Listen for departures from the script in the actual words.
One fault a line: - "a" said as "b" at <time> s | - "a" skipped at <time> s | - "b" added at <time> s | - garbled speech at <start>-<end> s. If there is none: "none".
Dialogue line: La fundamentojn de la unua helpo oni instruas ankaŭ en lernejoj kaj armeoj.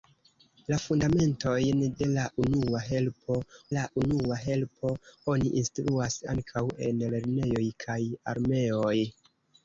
- "la unua helpo" added at 3.7 s